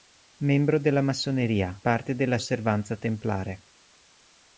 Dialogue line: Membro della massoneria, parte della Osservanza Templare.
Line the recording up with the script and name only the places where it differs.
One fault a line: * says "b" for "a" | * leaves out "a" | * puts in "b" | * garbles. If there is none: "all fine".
all fine